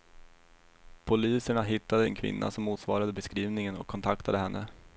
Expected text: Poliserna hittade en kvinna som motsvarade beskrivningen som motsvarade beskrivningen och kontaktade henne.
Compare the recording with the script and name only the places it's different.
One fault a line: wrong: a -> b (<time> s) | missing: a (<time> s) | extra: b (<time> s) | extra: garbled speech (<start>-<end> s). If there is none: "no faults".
missing: som motsvarade beskrivningen (3.8 s)